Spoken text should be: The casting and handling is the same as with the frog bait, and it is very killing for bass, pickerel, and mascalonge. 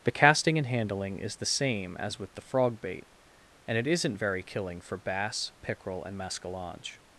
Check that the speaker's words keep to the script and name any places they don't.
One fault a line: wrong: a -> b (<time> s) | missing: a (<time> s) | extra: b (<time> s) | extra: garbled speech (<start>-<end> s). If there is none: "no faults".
wrong: is -> isn't (3.9 s)